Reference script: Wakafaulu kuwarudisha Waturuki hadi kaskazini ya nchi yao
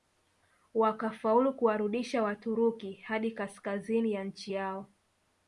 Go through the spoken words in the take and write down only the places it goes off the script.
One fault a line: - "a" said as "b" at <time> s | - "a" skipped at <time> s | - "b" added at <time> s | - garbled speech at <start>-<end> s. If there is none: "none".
none